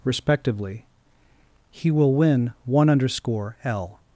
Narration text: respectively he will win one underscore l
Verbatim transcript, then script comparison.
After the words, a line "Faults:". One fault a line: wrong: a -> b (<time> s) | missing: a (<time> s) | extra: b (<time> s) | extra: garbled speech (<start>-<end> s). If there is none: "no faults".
respectively he will win one underscore l
Faults:
no faults